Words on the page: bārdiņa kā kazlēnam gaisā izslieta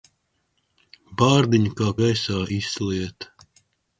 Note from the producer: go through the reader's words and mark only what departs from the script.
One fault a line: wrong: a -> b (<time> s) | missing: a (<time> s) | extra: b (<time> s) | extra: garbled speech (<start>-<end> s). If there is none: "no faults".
missing: kazlēnam (1.9 s)